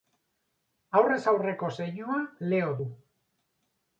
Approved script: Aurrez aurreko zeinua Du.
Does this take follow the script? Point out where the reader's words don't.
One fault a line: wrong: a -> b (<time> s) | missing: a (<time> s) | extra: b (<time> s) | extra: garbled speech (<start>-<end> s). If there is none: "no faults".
extra: Leo (2.5 s)